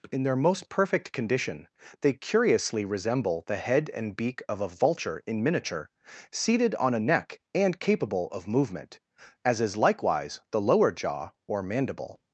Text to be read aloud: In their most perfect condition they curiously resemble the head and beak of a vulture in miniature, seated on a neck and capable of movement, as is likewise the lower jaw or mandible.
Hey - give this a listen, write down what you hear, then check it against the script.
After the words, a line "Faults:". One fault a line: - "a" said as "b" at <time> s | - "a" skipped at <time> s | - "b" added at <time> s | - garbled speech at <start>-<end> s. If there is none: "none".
In their most perfect condition they curiously resemble the head and beak of a vulture in miniature, seated on a neck and capable of movement, as is likewise the lower jaw or mandible.
Faults:
none